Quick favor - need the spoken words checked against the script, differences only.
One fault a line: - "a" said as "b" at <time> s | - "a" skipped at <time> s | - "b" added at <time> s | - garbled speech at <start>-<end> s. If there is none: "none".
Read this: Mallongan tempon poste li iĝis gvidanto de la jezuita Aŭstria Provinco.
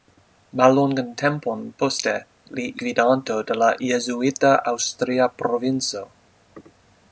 - "iĝis" skipped at 2.6 s